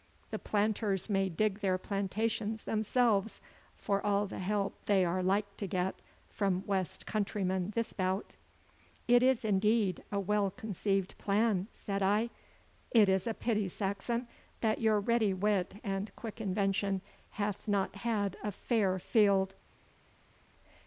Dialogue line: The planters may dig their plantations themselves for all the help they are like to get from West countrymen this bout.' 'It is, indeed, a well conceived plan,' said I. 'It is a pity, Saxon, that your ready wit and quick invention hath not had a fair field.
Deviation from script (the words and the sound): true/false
false